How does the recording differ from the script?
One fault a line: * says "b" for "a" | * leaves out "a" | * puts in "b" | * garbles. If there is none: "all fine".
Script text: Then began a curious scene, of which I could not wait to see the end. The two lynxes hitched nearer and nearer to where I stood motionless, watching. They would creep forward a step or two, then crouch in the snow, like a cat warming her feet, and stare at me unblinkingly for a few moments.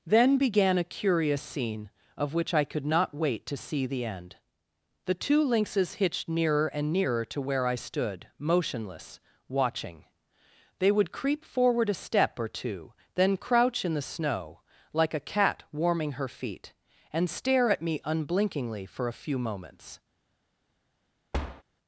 all fine